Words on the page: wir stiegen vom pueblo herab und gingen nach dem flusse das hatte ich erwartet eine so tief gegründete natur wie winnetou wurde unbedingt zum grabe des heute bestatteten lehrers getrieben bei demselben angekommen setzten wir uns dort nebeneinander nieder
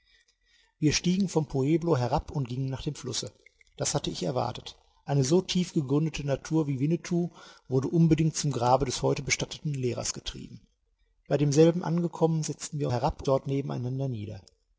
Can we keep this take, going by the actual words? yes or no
no